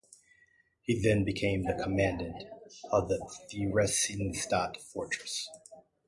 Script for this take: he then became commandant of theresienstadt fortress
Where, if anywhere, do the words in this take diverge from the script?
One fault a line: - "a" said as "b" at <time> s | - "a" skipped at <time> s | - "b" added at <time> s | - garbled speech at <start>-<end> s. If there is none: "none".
- "the" added at 1.6 s
- "the" added at 3.1 s